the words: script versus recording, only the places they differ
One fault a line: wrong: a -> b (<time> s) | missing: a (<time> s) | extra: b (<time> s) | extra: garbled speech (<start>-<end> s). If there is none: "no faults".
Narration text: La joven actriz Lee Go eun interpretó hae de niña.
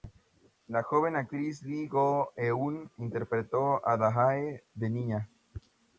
extra: a Da (3.9 s)